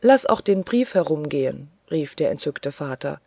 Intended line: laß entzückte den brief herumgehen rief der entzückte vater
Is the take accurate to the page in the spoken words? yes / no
no